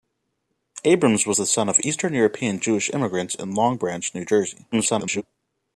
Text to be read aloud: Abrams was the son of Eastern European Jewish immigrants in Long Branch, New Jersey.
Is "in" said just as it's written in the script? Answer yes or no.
yes